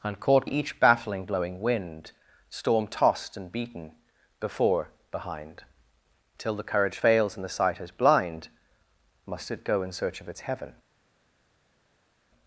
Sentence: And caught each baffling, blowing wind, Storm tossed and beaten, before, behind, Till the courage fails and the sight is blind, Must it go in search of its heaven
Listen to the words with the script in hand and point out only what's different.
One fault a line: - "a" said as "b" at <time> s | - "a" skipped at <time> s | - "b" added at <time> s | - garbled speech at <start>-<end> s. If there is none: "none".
none